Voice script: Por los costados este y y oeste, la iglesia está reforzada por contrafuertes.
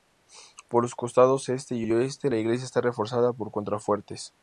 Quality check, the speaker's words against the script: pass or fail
pass